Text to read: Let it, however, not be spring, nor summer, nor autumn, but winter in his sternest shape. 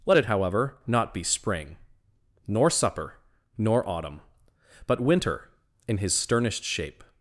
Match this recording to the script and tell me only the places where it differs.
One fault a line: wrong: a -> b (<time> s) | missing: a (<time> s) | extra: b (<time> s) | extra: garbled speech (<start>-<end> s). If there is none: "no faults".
wrong: summer -> supper (2.7 s)